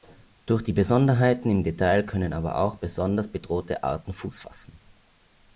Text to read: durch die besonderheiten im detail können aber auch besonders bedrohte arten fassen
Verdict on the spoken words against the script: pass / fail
fail